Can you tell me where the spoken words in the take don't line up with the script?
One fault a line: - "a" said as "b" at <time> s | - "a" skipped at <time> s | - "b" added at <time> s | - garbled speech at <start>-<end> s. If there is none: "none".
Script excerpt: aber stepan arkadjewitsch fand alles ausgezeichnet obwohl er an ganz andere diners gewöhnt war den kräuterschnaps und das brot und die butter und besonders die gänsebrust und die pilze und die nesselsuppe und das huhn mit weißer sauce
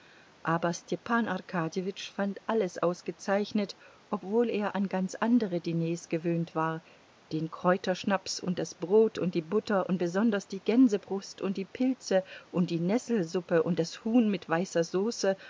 none